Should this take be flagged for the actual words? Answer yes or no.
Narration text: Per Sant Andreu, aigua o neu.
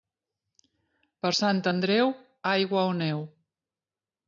no